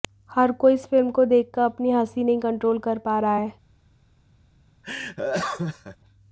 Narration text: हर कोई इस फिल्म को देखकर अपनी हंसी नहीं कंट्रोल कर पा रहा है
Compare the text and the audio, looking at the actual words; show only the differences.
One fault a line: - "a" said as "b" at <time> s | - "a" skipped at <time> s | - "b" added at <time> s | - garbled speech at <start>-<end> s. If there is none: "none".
none